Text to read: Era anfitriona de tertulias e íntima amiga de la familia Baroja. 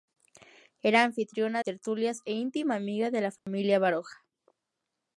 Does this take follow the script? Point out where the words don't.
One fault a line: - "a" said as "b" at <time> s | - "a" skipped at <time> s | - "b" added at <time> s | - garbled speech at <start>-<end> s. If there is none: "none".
- "de" skipped at 1.6 s